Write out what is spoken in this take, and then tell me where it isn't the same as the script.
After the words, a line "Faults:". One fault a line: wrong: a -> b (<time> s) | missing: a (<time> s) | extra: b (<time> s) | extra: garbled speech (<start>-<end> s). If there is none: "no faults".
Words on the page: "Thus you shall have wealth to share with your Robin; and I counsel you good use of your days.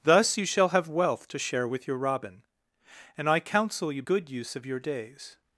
"Thus you shall have wealth to share with your Robin; and I counsel you good use of your days.
Faults:
no faults